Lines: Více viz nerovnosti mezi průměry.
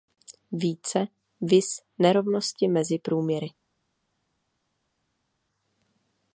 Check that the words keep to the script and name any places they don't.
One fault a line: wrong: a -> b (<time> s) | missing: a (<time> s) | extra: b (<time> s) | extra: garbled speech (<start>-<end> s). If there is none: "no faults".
no faults